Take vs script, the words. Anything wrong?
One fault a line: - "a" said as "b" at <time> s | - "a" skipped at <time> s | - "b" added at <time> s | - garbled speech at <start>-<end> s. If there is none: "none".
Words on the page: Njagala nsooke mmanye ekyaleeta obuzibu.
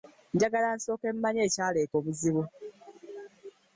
none